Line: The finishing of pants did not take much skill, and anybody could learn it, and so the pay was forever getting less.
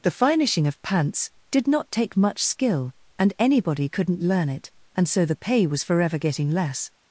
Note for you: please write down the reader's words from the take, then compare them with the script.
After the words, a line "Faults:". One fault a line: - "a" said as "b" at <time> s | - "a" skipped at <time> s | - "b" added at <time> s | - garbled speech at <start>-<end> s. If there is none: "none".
The finishing of pants did not take much skill, and anybody couldn't learn it, and so the pay was forever getting less.
Faults:
- "could" said as "couldn't" at 3.9 s